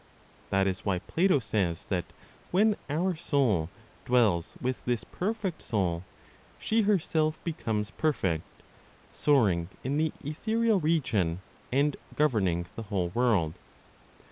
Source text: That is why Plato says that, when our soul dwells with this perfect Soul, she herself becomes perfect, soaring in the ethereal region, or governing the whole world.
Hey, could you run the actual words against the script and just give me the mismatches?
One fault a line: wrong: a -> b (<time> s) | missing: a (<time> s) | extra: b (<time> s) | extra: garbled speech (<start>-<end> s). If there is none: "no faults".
wrong: or -> and (11.7 s)